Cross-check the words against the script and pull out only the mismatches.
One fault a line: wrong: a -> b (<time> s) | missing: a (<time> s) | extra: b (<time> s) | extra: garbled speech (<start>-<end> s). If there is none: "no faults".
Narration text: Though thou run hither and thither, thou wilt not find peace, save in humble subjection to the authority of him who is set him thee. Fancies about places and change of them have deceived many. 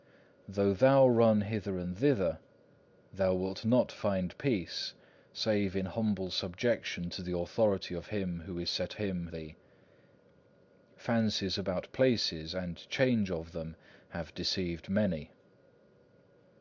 no faults